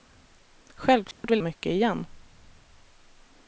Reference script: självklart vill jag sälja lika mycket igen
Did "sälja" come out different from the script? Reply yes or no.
yes